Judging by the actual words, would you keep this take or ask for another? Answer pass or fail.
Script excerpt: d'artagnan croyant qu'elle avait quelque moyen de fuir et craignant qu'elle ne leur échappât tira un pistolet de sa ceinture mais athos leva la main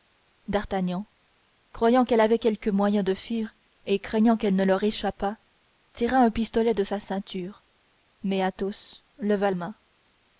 fail